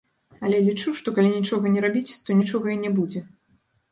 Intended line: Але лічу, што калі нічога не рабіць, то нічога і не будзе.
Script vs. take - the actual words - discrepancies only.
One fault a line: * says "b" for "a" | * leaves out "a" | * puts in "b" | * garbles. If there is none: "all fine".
all fine